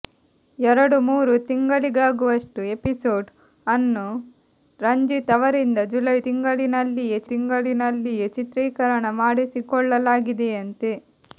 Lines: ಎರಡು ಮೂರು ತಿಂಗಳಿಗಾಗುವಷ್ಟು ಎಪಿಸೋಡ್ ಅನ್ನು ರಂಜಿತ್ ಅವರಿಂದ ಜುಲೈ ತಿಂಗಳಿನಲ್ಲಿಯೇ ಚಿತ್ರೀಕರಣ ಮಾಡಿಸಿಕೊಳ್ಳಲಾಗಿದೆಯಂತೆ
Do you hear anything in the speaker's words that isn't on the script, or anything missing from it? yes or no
yes